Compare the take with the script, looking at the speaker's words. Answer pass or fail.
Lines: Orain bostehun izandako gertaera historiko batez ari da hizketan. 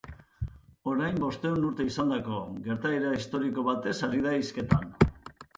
fail